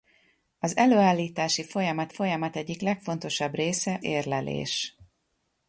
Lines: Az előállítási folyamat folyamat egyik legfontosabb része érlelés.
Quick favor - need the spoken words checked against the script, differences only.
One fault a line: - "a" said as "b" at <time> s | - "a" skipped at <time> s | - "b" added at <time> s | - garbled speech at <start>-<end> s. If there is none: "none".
none